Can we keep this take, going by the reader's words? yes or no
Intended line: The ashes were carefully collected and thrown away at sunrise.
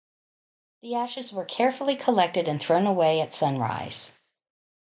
yes